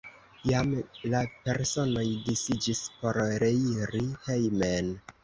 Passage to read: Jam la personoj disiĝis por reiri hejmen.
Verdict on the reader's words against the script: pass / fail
pass